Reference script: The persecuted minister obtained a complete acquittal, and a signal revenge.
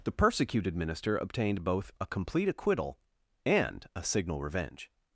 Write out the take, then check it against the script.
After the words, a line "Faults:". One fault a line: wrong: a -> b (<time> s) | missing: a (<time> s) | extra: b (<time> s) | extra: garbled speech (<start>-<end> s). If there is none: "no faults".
The persecuted minister obtained both a complete acquittal, and a signal revenge.
Faults:
extra: both (1.6 s)